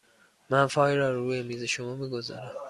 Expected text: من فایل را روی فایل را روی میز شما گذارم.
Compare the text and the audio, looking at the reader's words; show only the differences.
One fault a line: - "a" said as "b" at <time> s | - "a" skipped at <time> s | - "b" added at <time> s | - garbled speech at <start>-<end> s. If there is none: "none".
- "فایل را روی" skipped at 1.4 s
- "می" added at 2.0 s